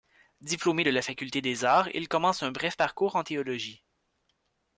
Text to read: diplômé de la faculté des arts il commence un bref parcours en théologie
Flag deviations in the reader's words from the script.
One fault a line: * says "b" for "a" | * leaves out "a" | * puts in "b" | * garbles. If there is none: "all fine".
all fine